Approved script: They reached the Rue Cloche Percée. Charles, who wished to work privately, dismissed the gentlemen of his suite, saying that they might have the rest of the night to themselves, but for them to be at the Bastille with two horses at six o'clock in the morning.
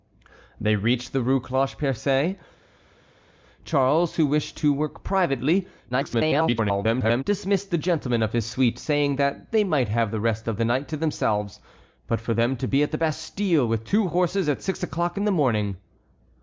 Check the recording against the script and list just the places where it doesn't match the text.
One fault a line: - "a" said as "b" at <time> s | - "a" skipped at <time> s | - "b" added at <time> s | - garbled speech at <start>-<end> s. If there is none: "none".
- garbled speech at 5.9-7.2 s